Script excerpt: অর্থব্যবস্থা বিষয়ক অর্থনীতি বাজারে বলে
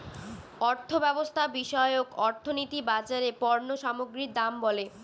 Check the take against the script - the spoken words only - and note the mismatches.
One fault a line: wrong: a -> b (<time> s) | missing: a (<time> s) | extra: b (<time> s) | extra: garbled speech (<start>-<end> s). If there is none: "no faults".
extra: পণ্য সামগ্রীর দাম (3.4 s)